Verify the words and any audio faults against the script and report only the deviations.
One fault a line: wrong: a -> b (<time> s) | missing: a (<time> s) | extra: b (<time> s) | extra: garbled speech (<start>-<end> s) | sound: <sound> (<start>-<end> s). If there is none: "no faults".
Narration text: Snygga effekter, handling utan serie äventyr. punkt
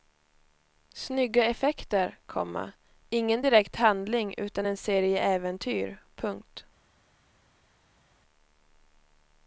extra: komma ingen direkt (2.2 s)
extra: en (4.6 s)